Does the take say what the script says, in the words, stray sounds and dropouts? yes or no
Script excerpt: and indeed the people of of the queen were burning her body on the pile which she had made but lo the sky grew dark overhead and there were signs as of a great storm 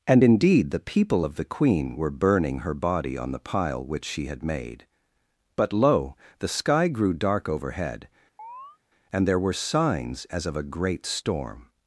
no